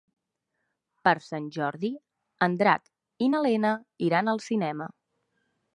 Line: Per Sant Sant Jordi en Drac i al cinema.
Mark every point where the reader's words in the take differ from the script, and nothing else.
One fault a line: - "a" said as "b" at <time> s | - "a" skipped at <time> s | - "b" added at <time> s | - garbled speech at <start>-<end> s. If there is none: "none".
- "Sant" skipped at 1.5 s
- "na Lena iran" added at 3.3 s